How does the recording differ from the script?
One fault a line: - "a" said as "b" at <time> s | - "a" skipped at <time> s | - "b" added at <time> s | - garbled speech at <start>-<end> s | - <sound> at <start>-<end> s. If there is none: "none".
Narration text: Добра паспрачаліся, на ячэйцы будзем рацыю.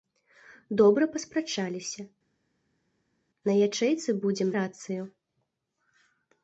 none